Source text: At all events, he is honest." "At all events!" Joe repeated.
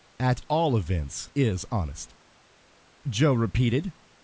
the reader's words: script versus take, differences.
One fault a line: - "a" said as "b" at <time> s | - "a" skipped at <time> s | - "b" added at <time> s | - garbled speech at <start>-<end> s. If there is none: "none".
- "he" skipped at 1.3 s
- "At all events" skipped at 2.1 s